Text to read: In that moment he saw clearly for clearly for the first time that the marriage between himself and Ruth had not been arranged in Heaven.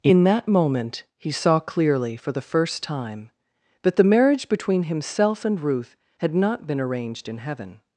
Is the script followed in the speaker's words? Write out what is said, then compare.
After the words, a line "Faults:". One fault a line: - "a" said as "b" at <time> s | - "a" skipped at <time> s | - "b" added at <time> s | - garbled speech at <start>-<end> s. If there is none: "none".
In that moment he saw clearly for the first time that the marriage between himself and Ruth had not been arranged in Heaven.
Faults:
- "clearly for" skipped at 2.3 s